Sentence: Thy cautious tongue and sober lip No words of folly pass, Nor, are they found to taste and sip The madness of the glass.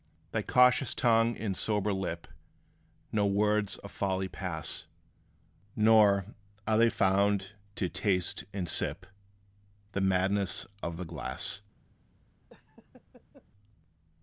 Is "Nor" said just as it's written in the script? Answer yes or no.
yes